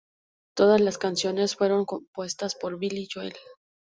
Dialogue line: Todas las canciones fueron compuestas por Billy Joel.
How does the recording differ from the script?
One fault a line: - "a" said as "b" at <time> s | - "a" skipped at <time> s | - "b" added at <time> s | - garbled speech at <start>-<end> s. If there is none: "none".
none